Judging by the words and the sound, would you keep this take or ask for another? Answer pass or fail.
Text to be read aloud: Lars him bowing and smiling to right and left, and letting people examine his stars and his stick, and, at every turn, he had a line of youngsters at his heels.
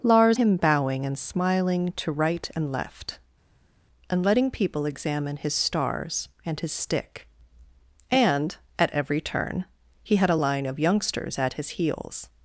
pass